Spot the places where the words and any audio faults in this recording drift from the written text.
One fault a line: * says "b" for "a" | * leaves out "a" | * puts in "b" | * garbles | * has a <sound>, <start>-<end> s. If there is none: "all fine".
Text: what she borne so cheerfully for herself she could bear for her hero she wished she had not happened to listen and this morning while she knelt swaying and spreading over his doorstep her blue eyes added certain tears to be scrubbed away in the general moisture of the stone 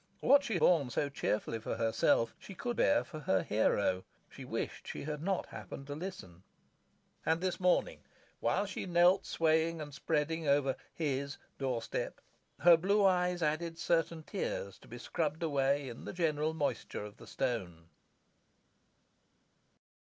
all fine